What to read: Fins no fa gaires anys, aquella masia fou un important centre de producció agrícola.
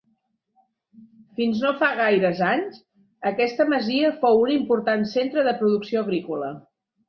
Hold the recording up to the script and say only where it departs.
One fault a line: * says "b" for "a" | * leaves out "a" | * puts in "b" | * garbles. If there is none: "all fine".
* says "aquesta" for "aquella"